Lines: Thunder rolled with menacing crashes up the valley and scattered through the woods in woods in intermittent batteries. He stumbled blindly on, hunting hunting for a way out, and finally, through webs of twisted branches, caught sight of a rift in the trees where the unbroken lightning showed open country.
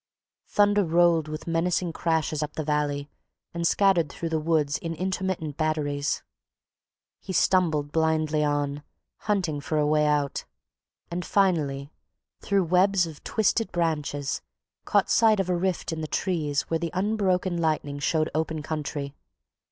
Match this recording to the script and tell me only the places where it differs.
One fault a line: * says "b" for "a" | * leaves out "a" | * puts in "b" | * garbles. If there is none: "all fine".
* leaves out "woods in"
* leaves out "hunting"